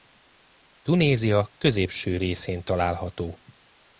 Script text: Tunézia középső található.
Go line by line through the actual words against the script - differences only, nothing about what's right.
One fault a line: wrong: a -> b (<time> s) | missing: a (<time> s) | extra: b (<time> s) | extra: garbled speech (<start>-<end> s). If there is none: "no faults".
extra: részén (2.2 s)